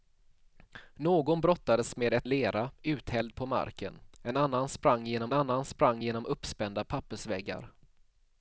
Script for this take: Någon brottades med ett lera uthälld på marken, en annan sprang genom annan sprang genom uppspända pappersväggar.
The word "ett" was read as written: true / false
true